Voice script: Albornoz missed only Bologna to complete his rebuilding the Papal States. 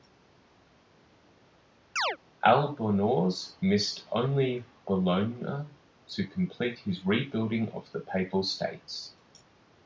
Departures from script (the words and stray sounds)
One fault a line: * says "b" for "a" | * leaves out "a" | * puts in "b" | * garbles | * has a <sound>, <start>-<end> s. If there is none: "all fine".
* has a chirp, 2.0-2.2 s
* puts in "of"